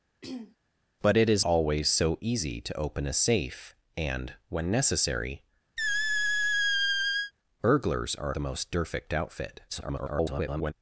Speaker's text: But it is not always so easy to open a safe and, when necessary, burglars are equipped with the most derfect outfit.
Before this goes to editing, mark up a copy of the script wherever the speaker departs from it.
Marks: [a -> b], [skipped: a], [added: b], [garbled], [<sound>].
[throat clearing] But it is [skipped: not] always so easy to open a safe and, when necessary, [squeak] burglars are [skipped: equipped with] the most derfect outfit. [garbled]